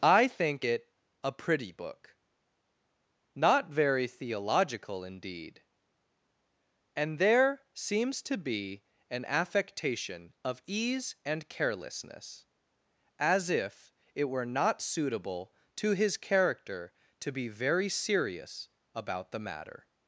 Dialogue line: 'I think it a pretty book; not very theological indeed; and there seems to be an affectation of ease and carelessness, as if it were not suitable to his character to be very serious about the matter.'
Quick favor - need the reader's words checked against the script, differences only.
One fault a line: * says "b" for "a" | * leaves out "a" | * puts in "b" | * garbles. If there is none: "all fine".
all fine